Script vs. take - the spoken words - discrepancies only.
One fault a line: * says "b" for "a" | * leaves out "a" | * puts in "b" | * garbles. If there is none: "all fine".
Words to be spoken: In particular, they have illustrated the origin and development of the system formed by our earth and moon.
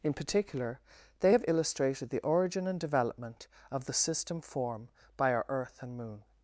* says "form" for "formed"